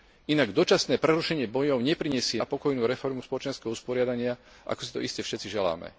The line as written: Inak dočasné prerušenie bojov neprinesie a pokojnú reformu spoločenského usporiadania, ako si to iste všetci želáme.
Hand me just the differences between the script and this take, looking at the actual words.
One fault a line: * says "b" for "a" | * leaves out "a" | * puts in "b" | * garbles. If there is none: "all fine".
all fine